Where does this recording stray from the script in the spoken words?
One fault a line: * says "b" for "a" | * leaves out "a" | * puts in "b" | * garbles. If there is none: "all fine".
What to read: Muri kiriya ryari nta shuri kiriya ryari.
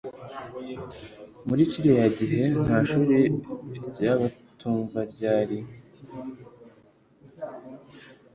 * says "gihe" for "ryari"
* says "ry'abatumva" for "kiriya"